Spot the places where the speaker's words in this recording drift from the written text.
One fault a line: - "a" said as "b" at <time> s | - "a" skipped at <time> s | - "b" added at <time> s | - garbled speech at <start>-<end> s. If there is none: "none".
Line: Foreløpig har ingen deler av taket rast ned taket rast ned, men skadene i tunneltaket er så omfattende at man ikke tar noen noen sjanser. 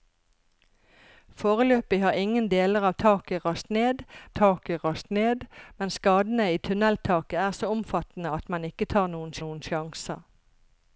none